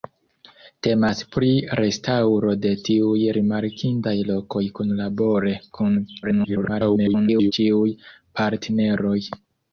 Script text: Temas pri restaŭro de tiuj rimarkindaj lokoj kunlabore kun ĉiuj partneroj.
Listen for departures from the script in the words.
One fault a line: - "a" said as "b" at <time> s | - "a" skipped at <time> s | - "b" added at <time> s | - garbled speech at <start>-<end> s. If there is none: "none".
- garbled speech at 6.2-7.5 s